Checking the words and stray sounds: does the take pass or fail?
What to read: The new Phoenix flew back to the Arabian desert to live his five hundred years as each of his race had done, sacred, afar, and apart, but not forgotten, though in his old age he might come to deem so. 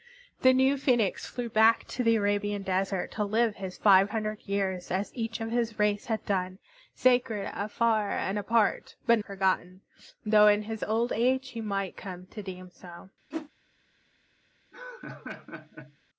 fail